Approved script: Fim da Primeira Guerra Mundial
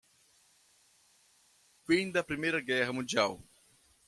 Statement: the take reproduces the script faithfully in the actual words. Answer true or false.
true